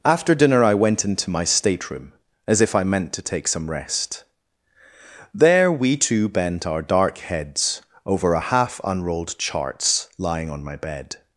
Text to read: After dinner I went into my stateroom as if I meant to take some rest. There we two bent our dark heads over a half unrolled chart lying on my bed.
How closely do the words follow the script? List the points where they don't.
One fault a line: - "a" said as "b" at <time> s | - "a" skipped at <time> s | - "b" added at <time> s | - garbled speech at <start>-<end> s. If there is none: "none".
- "chart" said as "charts" at 9.4 s